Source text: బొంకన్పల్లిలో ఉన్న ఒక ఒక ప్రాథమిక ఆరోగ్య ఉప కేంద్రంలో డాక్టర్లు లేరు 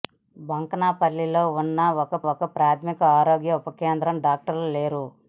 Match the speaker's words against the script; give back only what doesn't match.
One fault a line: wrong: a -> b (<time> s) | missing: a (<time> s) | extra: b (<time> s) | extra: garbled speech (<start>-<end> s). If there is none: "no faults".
no faults